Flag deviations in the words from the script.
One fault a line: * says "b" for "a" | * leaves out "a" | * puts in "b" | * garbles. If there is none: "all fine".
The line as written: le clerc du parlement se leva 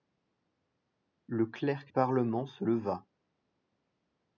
* leaves out "du"